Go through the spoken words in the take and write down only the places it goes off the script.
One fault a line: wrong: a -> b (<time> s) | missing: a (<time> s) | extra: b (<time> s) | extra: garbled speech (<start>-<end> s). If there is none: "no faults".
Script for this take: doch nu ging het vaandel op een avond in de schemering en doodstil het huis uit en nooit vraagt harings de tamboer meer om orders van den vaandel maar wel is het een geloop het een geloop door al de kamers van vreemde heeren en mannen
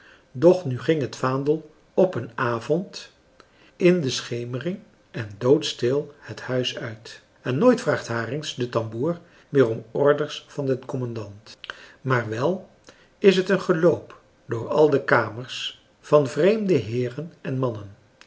wrong: vaandel -> commandant (10.8 s)
missing: het een geloop (14.2 s)